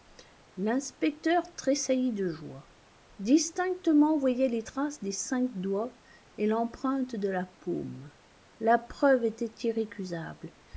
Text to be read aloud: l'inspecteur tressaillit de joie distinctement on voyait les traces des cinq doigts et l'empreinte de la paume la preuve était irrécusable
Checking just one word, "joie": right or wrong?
right